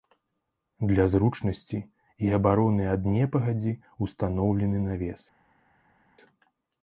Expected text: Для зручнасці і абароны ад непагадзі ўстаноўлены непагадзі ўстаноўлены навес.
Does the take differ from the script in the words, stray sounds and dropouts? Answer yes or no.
yes